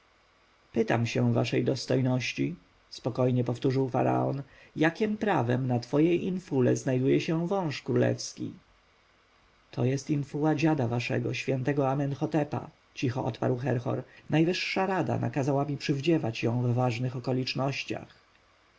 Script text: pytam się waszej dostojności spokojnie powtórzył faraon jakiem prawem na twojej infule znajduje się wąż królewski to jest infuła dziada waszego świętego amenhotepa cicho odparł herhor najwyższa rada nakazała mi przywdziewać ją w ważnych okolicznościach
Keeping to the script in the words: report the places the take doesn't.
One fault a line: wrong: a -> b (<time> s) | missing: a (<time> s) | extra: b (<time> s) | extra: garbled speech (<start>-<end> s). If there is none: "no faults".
no faults